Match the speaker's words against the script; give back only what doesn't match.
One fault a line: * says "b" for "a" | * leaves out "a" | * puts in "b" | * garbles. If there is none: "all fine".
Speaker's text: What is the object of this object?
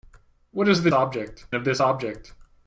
all fine